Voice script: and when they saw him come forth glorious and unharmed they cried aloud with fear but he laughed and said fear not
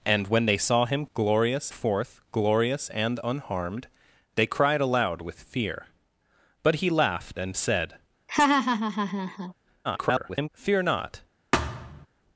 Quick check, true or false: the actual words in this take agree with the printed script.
false